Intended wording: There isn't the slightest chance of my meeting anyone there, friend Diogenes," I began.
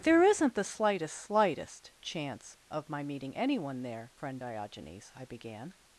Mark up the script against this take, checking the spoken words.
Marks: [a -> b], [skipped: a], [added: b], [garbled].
There isn't the slightest [added: slightest] chance of my meeting anyone there, friend Diogenes," I began.